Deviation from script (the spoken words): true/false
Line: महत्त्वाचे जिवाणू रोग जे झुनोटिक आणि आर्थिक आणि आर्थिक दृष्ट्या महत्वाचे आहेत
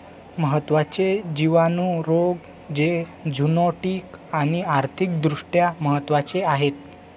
true